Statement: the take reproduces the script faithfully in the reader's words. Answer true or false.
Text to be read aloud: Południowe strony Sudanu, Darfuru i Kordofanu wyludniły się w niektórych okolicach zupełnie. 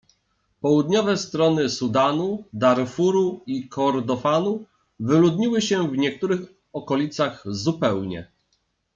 true